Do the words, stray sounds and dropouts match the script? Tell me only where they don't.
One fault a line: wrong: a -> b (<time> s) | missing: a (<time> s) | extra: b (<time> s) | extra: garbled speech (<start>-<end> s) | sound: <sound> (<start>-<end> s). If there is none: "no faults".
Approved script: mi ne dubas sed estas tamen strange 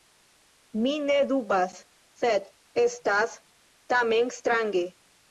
no faults